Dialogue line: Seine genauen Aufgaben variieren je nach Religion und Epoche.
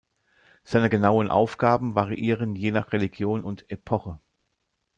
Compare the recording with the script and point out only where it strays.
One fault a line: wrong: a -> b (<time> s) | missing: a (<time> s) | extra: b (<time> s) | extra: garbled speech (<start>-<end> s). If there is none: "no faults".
no faults